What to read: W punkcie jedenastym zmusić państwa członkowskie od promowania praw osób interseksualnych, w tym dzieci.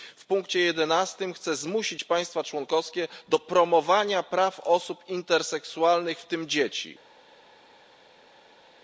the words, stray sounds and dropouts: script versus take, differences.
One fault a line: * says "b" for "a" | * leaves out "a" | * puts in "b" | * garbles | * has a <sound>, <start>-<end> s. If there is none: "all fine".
* puts in "chce"
* says "do" for "od"